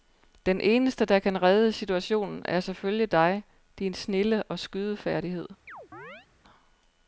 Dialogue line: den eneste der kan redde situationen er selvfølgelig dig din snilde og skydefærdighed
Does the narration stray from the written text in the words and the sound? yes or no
yes